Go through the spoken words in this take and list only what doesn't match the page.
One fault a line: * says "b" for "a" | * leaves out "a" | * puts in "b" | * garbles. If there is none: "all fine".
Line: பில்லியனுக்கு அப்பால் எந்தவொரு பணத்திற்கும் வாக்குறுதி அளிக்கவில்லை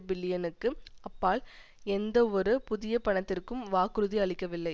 * puts in "புதிய"